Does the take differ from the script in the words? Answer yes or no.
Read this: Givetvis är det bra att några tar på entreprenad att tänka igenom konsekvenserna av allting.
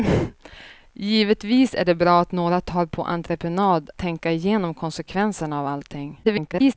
yes